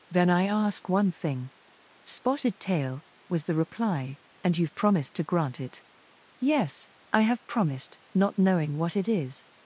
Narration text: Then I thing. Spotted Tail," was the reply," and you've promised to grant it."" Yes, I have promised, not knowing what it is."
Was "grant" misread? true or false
false